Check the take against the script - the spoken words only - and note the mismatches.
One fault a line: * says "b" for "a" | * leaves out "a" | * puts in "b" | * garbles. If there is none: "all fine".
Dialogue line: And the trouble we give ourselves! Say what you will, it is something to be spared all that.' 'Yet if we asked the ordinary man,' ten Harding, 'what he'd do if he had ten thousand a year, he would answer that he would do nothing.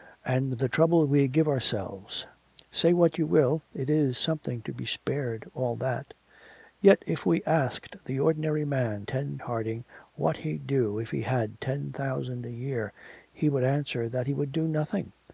all fine